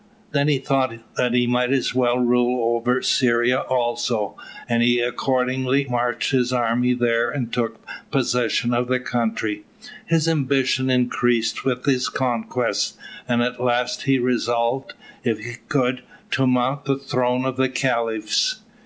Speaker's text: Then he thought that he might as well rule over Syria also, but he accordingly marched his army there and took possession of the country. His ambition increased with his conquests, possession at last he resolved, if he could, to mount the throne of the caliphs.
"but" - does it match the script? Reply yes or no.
no